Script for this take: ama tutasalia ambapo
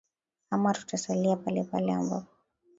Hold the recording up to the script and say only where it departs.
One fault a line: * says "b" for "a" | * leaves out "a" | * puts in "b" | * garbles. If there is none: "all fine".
* puts in "palepale"